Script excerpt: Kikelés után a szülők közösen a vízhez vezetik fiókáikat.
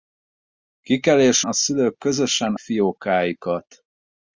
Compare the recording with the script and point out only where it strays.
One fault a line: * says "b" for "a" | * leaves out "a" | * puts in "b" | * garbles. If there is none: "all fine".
* leaves out "után"
* leaves out "a vízhez vezetik"